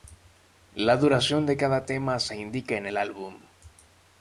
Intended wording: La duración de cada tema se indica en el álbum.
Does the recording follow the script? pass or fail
pass